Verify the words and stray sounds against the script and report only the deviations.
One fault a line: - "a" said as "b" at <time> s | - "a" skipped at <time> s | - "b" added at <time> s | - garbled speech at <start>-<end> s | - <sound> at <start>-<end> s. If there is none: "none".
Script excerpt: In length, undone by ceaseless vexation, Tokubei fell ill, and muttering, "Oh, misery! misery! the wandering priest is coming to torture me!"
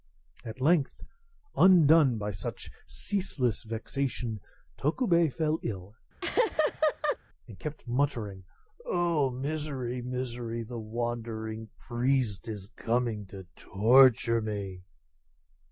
- "In" said as "At" at 0.4 s
- "such" added at 2.3 s
- laugh at 6.2-7.2 s
- "kept" added at 7.6 s